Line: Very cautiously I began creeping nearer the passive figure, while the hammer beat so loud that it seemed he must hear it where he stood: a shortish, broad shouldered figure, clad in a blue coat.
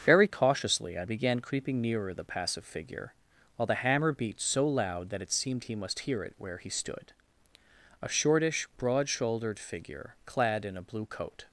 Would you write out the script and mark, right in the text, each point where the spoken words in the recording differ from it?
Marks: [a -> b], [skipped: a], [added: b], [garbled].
Very cautiously I began creeping nearer the passive figure, while the hammer beat so loud that it seemed he must hear it where he stood: a shortish, broad shouldered figure, clad in a blue coat.